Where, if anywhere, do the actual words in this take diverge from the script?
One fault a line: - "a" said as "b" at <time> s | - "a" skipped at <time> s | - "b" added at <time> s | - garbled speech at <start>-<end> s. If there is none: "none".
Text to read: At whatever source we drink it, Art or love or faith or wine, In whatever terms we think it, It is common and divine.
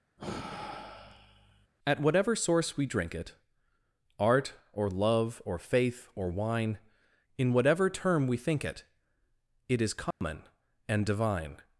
- "terms" said as "term" at 7.9 s